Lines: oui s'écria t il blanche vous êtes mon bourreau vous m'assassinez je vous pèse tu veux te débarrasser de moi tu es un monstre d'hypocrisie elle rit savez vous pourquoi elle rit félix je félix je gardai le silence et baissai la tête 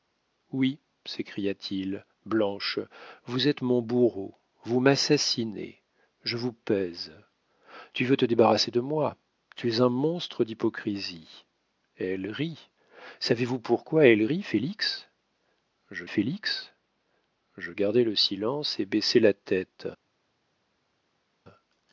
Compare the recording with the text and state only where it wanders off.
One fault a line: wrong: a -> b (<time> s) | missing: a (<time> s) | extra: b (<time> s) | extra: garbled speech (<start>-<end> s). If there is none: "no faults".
no faults